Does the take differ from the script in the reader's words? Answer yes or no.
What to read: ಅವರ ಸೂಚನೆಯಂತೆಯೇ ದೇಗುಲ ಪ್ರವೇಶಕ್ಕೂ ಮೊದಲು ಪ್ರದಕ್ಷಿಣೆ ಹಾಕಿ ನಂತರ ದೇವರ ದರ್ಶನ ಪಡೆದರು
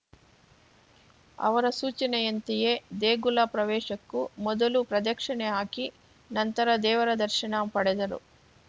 no